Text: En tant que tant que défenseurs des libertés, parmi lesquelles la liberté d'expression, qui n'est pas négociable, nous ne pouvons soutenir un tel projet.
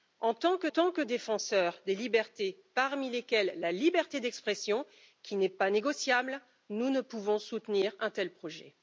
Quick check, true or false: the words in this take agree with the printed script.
true